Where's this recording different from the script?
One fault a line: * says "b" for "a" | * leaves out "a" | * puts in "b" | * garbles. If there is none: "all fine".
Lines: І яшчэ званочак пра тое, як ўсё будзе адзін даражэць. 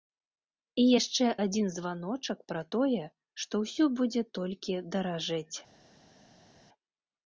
* puts in "адзін"
* says "што" for "як"
* says "толькі" for "адзін"